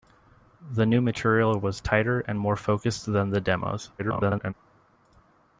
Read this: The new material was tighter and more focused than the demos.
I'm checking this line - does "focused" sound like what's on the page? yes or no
yes